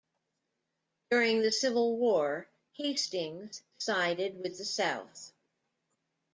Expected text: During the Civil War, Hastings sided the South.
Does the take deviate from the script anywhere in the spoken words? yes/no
yes